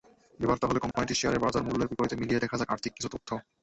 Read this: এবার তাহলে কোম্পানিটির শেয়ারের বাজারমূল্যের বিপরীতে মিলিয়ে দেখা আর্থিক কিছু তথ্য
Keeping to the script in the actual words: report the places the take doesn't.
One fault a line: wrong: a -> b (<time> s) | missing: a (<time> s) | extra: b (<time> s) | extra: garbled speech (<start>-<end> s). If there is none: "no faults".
extra: যাক (2.6 s)